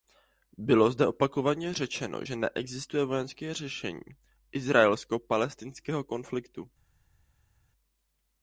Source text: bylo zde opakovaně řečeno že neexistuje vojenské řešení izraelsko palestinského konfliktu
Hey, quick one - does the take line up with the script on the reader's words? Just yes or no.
yes